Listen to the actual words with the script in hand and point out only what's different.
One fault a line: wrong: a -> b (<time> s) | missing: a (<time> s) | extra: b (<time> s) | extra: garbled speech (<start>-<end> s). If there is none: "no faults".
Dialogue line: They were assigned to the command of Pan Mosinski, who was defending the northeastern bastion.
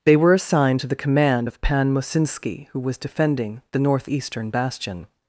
no faults